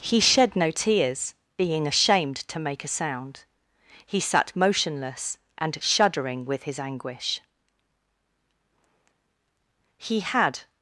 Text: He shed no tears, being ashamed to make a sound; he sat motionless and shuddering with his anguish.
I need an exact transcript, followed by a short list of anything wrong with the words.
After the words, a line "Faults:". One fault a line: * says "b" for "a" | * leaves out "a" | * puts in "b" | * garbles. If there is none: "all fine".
He shed no tears, being ashamed to make a sound; he sat motionless and shuddering with his anguish. He had
Faults:
* puts in "He had"